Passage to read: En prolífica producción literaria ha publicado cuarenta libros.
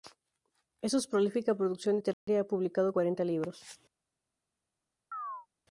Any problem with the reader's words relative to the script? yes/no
yes